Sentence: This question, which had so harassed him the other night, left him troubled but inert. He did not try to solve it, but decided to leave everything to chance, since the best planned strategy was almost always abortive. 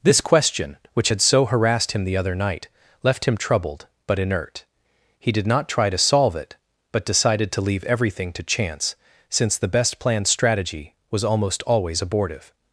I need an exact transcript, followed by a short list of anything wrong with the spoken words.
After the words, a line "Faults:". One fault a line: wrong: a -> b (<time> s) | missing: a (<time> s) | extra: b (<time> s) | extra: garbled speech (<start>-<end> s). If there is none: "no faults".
This question, which had so harassed him the other night, left him troubled but inert. He did not try to solve it, but decided to leave everything to chance, since the best planned strategy was almost always abortive.
Faults:
no faults